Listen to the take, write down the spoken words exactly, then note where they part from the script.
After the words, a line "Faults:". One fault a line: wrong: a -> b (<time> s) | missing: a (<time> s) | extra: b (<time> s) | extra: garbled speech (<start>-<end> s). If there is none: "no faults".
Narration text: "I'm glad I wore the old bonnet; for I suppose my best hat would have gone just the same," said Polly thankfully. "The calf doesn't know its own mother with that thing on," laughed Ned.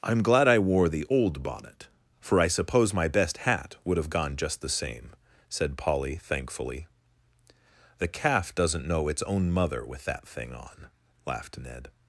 "I'm glad I wore the old bonnet; for I suppose my best hat would have gone just the same," said Polly thankfully. "The calf doesn't know its own mother with that thing on," laughed Ned.
Faults:
no faults